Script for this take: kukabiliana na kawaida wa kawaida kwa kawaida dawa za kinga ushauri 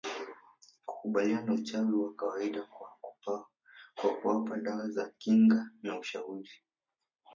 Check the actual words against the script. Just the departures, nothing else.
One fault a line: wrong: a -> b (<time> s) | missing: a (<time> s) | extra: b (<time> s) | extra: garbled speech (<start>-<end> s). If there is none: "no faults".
wrong: kawaida -> uchawi (1.5 s)
wrong: kawaida -> kuwapa (4.2 s)
extra: na (5.8 s)